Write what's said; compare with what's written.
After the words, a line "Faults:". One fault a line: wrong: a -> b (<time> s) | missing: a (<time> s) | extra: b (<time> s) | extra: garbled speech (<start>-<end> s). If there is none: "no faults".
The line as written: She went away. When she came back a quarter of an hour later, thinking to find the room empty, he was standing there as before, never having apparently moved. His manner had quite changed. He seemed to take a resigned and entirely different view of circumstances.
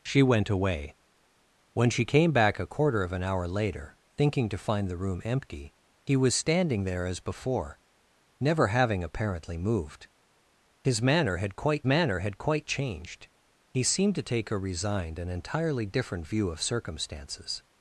She went away. When she came back a quarter of an hour later, thinking to find the room empty, he was standing there as before, never having apparently moved. His manner had quite manner had quite changed. He seemed to take a resigned and entirely different view of circumstances.
Faults:
extra: manner had quite (11.8 s)